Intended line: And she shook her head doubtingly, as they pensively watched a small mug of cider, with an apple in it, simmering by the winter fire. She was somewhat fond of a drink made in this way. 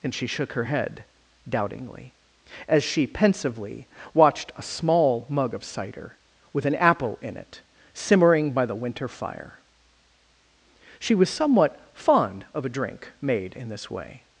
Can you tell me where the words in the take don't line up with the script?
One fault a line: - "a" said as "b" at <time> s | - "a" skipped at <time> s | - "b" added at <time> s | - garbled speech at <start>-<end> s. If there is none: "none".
- "they" said as "she" at 2.8 s